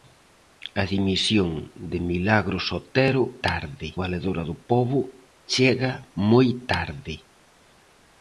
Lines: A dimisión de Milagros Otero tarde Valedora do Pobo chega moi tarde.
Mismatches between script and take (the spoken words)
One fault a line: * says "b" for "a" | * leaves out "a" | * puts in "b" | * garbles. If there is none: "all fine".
all fine